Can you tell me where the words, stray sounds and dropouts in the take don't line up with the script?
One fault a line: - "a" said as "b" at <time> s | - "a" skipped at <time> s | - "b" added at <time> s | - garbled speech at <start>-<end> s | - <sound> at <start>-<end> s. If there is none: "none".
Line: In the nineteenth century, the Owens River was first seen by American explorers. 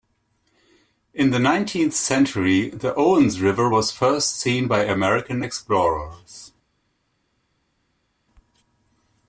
none